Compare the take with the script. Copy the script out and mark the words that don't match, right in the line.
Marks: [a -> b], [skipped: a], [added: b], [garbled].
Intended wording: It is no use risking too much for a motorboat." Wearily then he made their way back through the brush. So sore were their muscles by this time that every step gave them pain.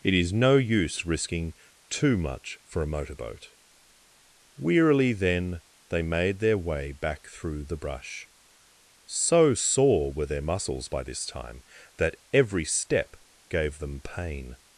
It is no use risking too much for a motorboat." Wearily then [he -> they] made their way back through the brush. So sore were their muscles by this time that every step gave them pain.